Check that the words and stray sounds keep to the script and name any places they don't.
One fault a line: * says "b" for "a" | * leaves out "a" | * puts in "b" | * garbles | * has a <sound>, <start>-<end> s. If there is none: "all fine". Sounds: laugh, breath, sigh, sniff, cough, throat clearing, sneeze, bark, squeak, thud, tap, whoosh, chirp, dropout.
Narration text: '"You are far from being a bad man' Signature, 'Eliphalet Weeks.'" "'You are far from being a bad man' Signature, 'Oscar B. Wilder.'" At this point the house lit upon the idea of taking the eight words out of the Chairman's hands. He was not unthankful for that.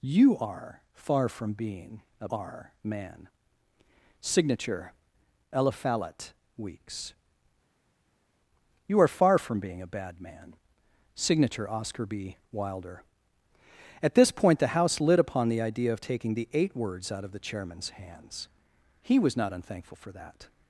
* says "are" for "bad"